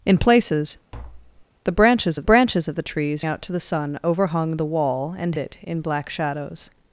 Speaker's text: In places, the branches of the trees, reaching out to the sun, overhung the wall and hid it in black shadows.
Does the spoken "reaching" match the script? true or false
false